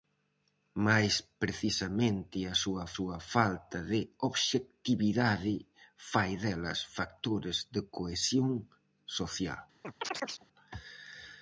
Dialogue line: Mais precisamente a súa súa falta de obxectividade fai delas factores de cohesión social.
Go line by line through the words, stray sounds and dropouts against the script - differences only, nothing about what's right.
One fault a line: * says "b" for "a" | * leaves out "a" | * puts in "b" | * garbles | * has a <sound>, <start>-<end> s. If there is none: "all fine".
* has a chirp, 9.8-10.5 s